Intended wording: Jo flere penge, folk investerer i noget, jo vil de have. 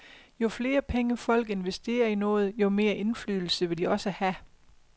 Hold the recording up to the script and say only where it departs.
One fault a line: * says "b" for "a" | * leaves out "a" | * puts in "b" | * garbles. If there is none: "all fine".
* puts in "mere indflydelse"
* puts in "også"